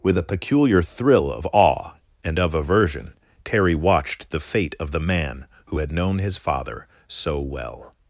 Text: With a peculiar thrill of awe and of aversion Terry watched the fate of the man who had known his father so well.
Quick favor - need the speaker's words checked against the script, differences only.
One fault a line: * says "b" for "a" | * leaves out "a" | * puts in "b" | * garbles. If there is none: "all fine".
all fine